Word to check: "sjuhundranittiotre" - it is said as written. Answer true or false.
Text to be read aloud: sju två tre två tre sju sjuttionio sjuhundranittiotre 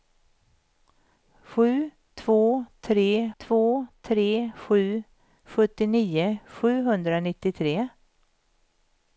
true